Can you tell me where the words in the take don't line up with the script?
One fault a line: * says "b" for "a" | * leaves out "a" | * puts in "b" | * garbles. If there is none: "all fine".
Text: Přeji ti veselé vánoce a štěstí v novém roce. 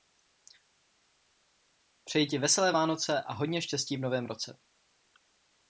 * puts in "hodně"